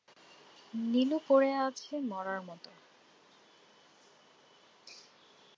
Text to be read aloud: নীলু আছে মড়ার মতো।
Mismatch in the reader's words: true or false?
true